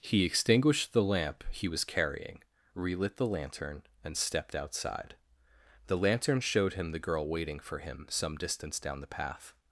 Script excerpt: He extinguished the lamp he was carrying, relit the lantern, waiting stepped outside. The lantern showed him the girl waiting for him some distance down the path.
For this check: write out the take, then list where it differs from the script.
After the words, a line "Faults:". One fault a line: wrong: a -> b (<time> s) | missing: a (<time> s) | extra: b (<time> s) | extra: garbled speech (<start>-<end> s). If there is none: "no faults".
He extinguished the lamp he was carrying, relit the lantern, and stepped outside. The lantern showed him the girl waiting for him some distance down the path.
Faults:
wrong: waiting -> and (4.0 s)